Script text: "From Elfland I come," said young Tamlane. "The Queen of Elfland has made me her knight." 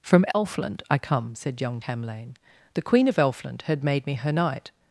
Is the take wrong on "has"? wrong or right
wrong